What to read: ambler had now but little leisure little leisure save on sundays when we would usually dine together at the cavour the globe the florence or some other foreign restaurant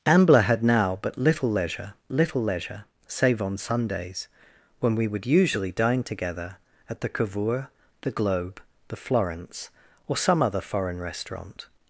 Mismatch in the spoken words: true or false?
false